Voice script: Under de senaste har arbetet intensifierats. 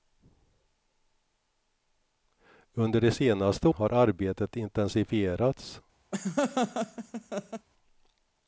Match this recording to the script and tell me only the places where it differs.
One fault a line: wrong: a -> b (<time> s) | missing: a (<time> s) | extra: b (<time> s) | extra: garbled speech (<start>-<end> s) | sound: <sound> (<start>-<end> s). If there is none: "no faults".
sound: laugh (6.1-7.7 s)